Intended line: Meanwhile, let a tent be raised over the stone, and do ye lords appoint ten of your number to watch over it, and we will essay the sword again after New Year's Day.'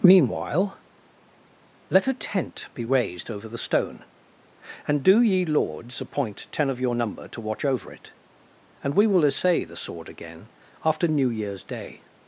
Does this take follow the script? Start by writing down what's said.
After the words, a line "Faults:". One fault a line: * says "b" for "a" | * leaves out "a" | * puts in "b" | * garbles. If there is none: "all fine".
Meanwhile, let a tent be raised over the stone, and do ye lords appoint ten of your number to watch over it, and we will essay the sword again after New Year's Day.'
Faults:
all fine